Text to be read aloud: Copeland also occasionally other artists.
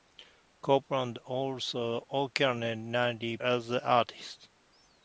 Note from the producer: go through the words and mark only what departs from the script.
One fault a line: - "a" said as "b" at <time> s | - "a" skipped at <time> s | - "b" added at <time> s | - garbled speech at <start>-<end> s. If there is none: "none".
none